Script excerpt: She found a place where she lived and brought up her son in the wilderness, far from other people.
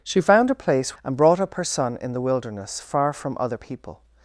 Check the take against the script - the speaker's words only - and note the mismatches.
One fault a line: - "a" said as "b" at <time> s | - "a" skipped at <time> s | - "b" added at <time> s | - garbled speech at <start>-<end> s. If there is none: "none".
- "where she lived" skipped at 0.9 s